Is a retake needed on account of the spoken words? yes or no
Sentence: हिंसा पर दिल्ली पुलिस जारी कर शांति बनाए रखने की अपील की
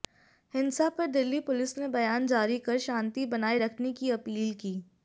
yes